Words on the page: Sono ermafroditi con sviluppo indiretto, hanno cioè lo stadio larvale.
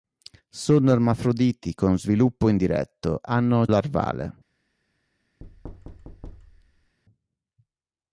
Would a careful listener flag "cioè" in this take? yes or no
yes